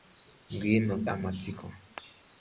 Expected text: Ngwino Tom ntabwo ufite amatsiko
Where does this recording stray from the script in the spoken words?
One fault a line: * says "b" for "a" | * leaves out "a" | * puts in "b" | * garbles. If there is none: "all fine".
* leaves out "Tom ntabwo ufite"